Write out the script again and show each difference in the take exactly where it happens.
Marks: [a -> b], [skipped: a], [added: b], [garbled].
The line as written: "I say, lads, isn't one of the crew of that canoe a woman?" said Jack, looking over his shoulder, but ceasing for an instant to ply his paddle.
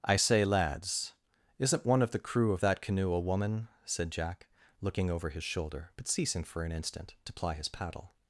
"I say, lads, isn't one of the crew of that canoe a woman?" said Jack, looking over his shoulder, but ceasing for an instant to ply his paddle.